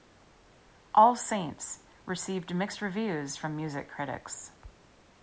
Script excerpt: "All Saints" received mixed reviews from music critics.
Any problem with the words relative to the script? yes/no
no